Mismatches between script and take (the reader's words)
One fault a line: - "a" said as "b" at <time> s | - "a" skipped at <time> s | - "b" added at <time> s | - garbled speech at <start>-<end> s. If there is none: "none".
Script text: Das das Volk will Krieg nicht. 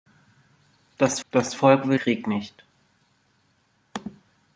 none